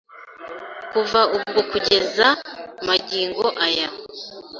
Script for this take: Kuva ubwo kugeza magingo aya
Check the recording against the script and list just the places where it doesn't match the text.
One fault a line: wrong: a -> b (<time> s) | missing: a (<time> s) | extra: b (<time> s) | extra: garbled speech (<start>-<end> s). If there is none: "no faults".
no faults